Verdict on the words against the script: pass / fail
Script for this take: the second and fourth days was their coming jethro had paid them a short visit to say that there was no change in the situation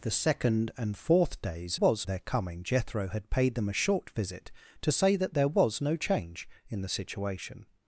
pass